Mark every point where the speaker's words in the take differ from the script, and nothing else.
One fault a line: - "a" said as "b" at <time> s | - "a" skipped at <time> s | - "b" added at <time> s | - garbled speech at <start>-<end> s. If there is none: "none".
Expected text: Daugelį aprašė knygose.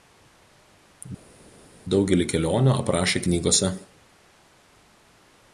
- "kelionių" added at 2.3 s